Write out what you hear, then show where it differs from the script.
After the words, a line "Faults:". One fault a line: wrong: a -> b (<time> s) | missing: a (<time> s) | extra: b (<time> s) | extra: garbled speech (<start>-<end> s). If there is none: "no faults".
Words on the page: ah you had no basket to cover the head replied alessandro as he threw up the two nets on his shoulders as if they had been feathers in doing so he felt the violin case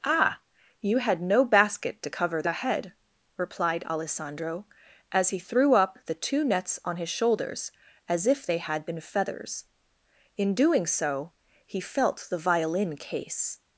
ah you had no basket to cover the head replied alessandro as he threw up the two nets on his shoulders as if they had been feathers in doing so he felt the violin case
Faults:
no faults